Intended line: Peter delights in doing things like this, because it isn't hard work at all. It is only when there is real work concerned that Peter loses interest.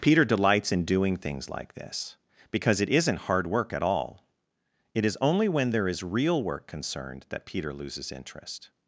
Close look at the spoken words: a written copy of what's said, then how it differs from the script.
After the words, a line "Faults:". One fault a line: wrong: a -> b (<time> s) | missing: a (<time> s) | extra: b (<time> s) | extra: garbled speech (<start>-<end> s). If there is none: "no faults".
Peter delights in doing things like this, because it isn't hard work at all. It is only when there is real work concerned that Peter loses interest.
Faults:
no faults